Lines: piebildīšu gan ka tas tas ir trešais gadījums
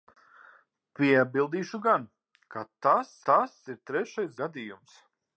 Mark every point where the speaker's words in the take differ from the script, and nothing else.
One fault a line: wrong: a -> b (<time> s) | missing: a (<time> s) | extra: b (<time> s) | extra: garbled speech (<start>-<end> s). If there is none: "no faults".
no faults